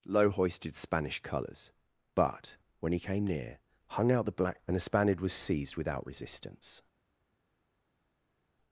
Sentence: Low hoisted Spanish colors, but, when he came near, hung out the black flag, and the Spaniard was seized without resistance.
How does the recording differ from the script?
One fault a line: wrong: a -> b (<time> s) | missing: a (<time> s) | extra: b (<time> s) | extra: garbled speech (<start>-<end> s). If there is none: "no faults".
missing: flag (4.6 s)